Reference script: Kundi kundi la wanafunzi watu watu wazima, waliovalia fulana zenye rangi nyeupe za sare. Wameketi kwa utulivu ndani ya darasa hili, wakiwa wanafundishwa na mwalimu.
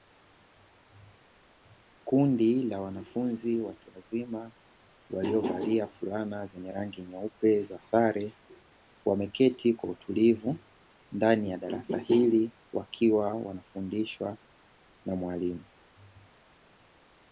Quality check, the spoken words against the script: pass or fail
fail